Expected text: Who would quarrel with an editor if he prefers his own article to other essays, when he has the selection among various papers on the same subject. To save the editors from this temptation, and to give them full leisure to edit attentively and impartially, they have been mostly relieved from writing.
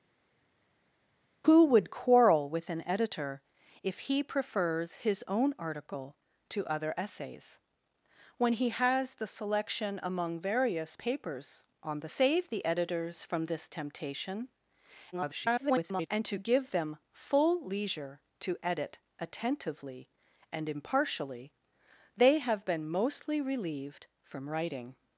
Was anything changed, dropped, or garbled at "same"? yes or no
yes